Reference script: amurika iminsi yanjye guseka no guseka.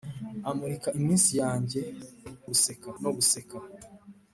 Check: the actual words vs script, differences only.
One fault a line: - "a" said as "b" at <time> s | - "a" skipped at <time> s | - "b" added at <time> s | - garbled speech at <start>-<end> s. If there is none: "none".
none